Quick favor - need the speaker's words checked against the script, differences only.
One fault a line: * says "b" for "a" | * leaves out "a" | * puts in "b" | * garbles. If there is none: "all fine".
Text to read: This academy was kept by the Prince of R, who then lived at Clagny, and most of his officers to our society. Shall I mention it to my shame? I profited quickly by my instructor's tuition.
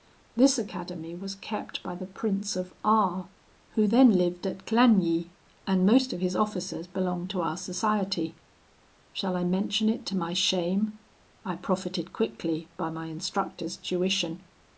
* puts in "belonged"